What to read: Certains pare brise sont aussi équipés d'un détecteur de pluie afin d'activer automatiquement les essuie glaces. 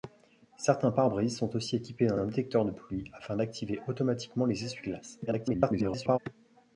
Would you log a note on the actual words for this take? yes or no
yes